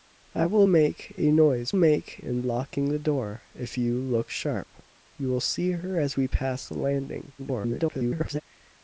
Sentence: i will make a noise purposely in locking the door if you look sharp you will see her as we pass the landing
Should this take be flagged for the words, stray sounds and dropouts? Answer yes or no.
yes